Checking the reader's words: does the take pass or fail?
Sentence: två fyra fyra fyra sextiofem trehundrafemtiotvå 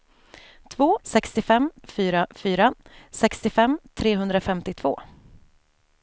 fail